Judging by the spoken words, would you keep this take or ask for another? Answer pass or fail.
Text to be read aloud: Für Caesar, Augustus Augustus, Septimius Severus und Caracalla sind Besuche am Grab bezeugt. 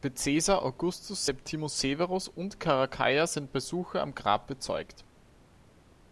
fail